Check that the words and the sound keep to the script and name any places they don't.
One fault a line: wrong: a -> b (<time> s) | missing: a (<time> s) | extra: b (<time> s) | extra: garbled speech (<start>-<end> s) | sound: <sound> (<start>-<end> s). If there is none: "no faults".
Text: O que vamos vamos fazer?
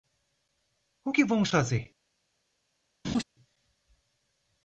missing: vamos (1.5 s)
sound: laugh (3.0-3.2 s)